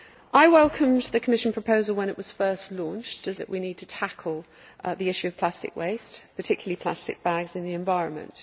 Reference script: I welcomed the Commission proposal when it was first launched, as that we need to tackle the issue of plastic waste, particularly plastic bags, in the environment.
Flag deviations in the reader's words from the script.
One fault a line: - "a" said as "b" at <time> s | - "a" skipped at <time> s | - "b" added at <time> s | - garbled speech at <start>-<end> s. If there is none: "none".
none